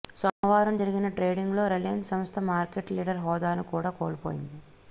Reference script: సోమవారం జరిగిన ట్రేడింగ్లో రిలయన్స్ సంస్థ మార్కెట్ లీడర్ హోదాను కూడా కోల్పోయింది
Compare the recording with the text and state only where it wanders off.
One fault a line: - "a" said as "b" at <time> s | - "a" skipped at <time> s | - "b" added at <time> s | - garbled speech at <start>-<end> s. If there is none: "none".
none